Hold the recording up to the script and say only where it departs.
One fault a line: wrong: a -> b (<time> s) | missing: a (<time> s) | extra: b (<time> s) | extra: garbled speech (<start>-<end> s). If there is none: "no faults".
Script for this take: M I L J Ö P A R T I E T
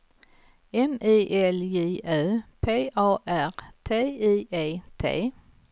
no faults